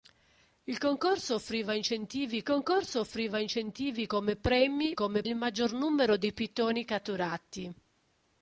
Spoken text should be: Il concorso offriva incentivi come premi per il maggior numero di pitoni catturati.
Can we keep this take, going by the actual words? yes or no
no